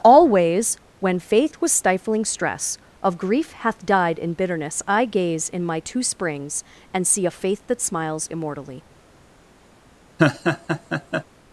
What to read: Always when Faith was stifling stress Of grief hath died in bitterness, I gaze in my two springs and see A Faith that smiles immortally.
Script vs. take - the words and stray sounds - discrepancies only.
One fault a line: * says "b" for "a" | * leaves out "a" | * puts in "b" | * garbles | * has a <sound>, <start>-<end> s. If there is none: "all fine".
* has a laugh, 10.2-11.2 s